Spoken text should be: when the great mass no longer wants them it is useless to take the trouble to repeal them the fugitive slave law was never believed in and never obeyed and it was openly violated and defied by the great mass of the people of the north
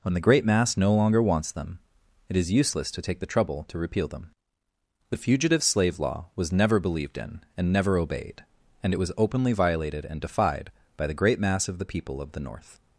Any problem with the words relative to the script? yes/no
no